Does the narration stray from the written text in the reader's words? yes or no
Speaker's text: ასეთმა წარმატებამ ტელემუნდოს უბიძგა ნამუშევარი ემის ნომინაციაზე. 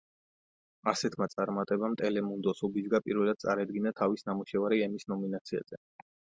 yes